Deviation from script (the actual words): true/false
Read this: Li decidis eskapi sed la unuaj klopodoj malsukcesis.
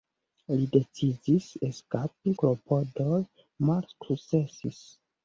true